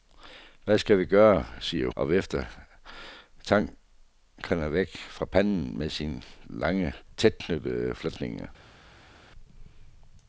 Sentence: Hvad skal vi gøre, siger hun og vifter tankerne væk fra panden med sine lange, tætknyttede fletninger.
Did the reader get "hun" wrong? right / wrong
wrong